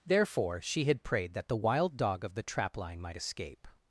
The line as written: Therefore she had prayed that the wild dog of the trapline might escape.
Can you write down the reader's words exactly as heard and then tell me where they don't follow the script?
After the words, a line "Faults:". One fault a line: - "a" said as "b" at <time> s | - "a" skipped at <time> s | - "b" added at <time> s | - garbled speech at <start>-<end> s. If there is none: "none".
Therefore she had prayed that the wild dog of the trapline might escape.
Faults:
none